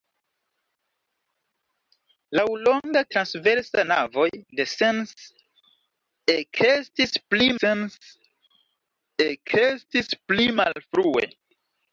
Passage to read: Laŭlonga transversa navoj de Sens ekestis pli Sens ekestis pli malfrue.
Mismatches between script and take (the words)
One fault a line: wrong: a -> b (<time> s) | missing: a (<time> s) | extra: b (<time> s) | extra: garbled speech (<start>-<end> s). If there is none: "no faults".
no faults